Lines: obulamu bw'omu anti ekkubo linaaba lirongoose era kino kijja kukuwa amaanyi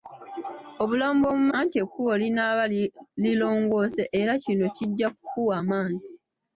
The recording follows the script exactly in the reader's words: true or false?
true